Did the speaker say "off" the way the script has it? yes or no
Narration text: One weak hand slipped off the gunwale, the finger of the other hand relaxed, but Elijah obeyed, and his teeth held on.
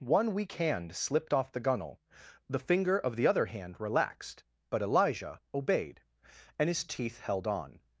yes